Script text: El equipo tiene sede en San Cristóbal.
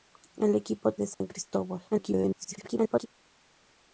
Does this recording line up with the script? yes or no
no